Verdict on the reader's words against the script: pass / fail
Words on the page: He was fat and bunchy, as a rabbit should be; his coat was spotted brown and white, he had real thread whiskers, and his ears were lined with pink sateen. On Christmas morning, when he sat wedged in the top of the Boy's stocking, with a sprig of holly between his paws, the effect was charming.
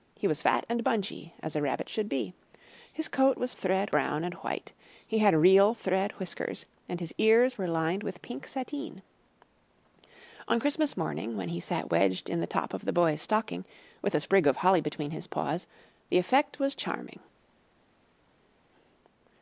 fail